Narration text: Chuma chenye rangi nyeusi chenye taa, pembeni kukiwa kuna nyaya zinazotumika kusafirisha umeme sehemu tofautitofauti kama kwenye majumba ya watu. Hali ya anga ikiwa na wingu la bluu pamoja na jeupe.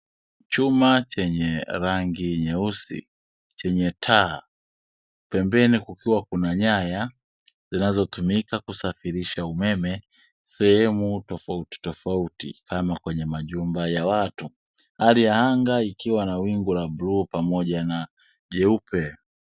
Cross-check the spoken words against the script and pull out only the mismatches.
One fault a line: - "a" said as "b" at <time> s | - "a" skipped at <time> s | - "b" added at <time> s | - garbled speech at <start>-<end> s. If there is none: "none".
none